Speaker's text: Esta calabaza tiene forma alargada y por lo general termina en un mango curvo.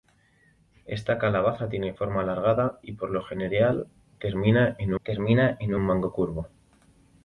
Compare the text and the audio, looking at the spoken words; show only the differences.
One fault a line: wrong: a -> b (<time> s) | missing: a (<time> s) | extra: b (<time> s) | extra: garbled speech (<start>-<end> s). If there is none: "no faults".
extra: termina en (5.0 s)